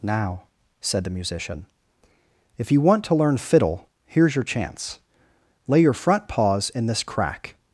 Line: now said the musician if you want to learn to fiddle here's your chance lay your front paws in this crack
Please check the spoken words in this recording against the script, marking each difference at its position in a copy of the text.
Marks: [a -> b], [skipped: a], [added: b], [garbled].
now said the musician if you want to learn [skipped: to] fiddle here's your chance lay your front paws in this crack